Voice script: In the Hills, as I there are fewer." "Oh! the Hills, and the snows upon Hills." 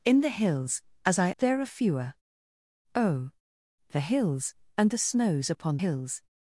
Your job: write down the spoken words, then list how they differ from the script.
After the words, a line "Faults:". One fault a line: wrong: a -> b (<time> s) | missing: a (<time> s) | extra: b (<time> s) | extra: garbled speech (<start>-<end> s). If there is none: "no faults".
In the Hills, as I there are fewer." "Oh! the Hills, and the snows upon Hills."
Faults:
no faults